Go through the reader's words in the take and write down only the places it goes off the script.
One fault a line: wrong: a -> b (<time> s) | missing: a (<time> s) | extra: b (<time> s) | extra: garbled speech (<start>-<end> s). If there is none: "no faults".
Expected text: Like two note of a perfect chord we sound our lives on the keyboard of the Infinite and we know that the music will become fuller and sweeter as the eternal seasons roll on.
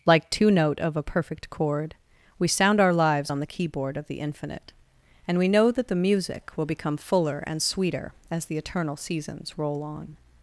no faults